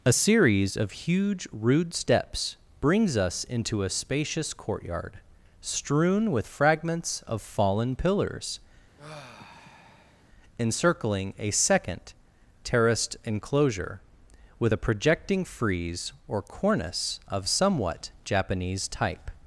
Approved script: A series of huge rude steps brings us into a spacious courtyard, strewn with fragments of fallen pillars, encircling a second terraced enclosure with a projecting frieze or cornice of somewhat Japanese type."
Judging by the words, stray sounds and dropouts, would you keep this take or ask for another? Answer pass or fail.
fail